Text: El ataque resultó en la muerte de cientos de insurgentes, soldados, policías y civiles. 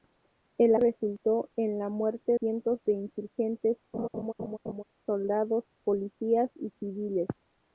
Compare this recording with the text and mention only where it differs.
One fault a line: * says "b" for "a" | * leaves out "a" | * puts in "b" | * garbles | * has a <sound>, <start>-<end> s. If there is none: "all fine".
* leaves out "ataque"
* leaves out "de"
* has a laugh, 3.9-4.8 s